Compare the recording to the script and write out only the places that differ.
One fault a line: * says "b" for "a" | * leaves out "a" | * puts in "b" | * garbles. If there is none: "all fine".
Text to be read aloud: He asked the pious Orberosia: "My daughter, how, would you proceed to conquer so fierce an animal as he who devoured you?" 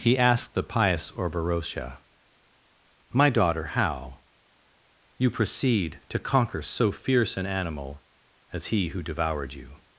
* leaves out "would"